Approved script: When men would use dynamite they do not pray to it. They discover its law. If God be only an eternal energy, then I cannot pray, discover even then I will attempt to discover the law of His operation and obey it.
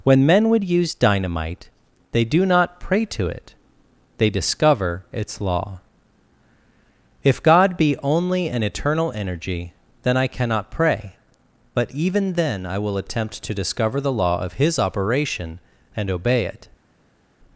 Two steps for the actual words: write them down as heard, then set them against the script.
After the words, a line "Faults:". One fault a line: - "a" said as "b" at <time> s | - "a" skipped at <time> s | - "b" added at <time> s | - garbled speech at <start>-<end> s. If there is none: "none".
When men would use dynamite they do not pray to it. They discover its law. If God be only an eternal energy, then I cannot pray, but even then I will attempt to discover the law of His operation and obey it.
Faults:
- "discover" said as "but" at 11.7 s